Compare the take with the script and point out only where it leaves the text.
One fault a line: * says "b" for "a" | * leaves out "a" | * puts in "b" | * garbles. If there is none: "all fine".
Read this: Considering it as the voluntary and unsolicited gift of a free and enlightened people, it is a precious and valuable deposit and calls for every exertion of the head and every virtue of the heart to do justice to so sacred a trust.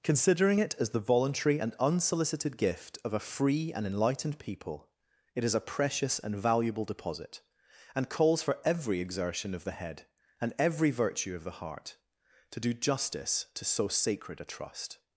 all fine